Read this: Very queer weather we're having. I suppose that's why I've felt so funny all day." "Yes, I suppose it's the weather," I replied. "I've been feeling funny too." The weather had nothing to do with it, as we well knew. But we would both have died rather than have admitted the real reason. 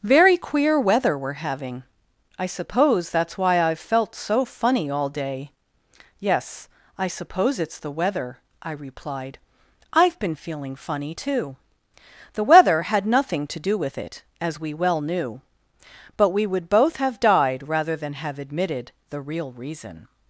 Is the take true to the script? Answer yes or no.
yes